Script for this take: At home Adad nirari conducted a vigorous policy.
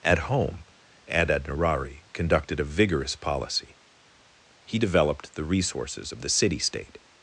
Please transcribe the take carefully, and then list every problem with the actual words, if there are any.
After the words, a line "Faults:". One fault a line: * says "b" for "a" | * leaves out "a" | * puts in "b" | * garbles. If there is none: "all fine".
At home Adad nirari conducted a vigorous policy. He developed the resources of the city state
Faults:
* puts in "He developed the resources of the city state"